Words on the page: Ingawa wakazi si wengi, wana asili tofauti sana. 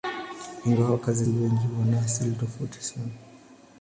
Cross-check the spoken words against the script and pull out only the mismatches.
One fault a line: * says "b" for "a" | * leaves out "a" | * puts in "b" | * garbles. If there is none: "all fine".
* leaves out "si"